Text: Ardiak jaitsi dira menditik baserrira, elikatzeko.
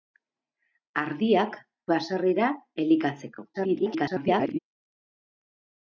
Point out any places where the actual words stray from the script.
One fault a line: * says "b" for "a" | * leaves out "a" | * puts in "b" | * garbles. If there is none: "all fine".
* leaves out "jaitsi dira menditik"
* garbles